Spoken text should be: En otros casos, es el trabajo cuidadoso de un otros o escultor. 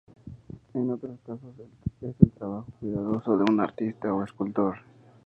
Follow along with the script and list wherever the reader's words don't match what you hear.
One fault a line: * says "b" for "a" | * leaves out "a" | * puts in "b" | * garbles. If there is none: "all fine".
* says "artista" for "otros"